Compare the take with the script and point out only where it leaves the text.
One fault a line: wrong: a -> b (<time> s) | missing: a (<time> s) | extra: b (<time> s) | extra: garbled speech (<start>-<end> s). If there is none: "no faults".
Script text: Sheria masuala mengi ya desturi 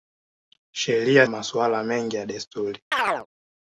no faults